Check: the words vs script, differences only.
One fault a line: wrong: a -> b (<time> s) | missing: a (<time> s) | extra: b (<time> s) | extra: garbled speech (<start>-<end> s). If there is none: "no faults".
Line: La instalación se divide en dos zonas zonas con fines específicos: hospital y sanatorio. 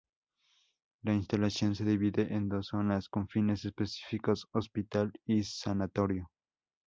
missing: zonas (3.1 s)